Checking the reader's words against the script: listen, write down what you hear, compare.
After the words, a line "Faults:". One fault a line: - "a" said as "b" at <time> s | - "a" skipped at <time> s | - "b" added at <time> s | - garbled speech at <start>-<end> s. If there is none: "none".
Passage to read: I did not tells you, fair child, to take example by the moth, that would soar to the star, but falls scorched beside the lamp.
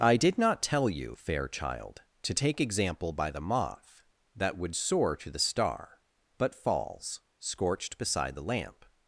I did not tell you, fair child, to take example by the moth, that would soar to the star, but falls scorched beside the lamp.
Faults:
- "tells" said as "tell" at 0.6 s